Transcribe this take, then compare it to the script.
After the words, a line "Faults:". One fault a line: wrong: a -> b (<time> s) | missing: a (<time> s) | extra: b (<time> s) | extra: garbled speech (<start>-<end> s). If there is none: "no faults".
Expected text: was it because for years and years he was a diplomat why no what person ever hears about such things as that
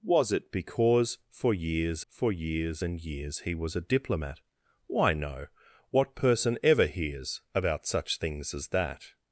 was it because for years for years and years he was a diplomat why no what person ever hears about such things as that
Faults:
extra: for years (2.1 s)